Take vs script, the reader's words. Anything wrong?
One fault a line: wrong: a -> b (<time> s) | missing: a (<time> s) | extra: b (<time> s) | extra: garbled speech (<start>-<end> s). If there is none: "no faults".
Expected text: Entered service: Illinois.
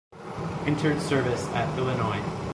extra: at (1.5 s)